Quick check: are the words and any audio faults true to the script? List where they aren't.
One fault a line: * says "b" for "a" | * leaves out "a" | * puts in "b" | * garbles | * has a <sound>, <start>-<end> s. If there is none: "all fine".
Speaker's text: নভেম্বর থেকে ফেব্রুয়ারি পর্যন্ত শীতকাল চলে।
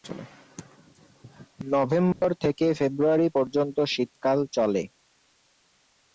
* has a dropout, 2.1-2.2 s